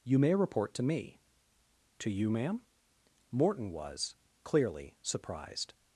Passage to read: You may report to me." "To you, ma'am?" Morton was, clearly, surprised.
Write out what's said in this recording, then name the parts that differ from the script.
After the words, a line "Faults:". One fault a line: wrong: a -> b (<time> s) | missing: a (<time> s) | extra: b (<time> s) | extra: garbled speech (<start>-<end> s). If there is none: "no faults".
You may report to me." "To you, ma'am?" Morton was, clearly, surprised.
Faults:
no faults